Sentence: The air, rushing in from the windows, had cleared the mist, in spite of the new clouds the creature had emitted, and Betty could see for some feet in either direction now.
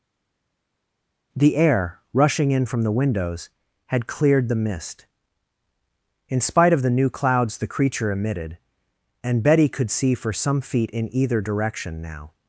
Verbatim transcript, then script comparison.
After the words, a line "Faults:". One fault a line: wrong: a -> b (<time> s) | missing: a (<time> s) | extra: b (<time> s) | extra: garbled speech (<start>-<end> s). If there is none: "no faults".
The air, rushing in from the windows, had cleared the mist, in spite of the new clouds the creature emitted, and Betty could see for some feet in either direction now.
Faults:
missing: had (8.1 s)